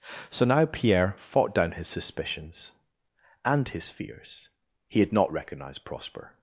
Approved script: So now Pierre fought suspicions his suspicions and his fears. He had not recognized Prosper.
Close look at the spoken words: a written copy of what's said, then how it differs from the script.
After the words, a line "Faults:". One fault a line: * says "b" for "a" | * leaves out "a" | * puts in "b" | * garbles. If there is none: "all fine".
So now Pierre fought down his suspicions and his fears. He had not recognized Prosper.
Faults:
* says "down" for "suspicions"